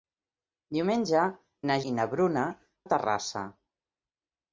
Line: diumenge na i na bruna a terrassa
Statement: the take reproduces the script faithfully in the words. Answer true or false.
true